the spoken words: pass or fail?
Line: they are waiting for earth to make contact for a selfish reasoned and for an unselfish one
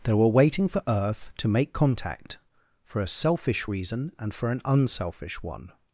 fail